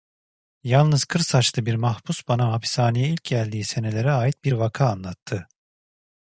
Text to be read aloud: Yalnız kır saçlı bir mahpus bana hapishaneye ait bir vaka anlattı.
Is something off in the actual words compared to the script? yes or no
yes